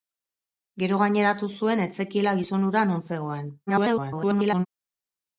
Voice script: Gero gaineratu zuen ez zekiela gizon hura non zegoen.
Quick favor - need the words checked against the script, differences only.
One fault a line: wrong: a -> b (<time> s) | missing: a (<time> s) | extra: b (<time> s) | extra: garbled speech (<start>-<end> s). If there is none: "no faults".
extra: garbled speech (3.7-4.7 s)